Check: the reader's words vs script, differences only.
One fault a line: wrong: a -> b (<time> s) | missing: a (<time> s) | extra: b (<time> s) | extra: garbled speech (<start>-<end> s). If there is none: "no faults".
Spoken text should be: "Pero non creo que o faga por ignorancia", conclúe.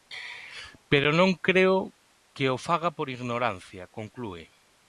no faults